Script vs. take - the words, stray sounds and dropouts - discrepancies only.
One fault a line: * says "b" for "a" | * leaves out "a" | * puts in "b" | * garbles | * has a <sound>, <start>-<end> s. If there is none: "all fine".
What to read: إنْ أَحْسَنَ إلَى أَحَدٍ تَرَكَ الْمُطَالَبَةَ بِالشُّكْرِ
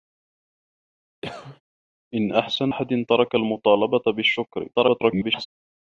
* has a cough, 1.2-1.6 s
* leaves out "إلَى"
* garbles